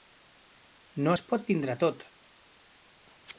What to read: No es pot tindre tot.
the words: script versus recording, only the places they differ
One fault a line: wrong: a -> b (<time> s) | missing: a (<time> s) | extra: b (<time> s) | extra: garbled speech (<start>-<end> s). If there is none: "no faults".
no faults